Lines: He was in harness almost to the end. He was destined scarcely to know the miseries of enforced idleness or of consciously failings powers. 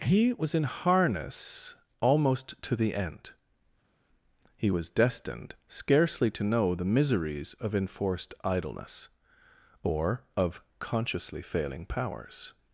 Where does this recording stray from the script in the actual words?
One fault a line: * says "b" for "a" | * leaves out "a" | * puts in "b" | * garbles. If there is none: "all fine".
* says "failing" for "failings"